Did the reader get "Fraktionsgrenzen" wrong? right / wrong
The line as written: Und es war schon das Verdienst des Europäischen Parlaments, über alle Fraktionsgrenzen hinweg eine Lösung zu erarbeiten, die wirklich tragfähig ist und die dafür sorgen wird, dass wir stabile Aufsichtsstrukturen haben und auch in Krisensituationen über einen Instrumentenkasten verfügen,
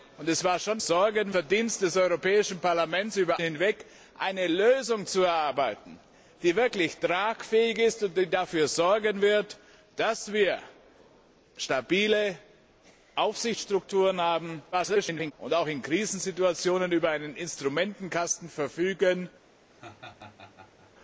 wrong